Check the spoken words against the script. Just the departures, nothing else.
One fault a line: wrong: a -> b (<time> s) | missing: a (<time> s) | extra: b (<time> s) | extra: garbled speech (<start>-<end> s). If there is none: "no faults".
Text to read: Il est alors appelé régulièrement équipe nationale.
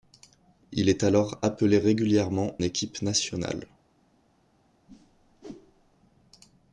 no faults